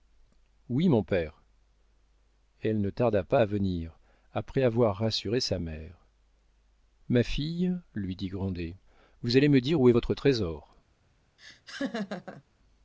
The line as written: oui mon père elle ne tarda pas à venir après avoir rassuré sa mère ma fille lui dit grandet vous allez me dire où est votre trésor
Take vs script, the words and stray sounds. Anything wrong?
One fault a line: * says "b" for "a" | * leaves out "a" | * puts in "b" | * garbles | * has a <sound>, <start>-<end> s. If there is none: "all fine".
* has a laugh, 11.4-12.4 s